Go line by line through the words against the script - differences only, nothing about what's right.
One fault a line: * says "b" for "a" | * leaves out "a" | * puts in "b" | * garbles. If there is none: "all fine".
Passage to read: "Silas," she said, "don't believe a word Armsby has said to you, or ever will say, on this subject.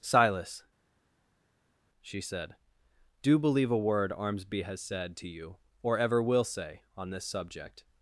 * says "do" for "don't"